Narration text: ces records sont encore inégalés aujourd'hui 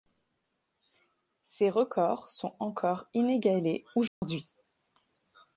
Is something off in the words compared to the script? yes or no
no